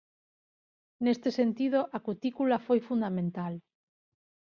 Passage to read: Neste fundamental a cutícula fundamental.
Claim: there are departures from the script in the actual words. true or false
true